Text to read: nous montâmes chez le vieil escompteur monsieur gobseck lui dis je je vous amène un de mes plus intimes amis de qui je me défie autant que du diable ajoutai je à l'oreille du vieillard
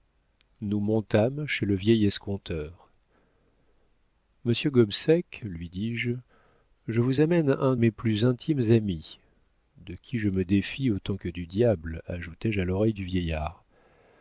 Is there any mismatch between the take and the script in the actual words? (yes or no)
yes